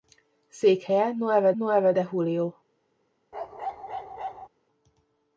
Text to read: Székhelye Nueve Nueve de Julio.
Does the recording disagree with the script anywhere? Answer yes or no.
no